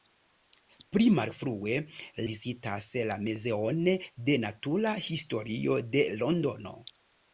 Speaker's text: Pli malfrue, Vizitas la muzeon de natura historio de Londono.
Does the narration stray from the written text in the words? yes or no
no